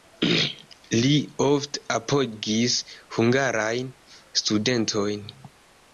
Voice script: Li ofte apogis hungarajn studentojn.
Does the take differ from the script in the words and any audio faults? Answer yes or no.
no